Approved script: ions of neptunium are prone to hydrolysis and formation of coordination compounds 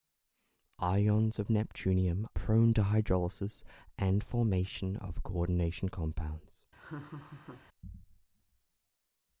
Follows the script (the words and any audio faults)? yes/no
no